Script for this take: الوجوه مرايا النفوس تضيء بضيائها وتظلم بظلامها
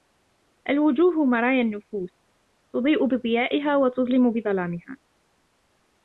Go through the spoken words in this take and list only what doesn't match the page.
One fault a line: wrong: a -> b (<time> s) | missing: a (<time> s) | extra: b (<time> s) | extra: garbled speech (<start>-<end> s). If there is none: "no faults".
no faults